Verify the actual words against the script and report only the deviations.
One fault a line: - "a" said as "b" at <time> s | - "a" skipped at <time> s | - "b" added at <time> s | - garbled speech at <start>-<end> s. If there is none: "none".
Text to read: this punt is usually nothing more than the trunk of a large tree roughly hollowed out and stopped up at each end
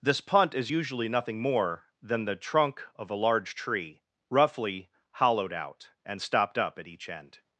none